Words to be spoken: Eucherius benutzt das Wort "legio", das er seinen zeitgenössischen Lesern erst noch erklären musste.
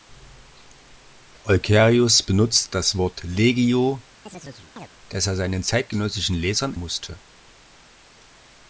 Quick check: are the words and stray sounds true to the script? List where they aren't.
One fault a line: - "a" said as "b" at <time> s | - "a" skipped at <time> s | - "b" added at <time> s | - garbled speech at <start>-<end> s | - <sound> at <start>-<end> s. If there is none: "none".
- chirp at 4.3-4.9 s
- "erst noch erklären" skipped at 6.8 s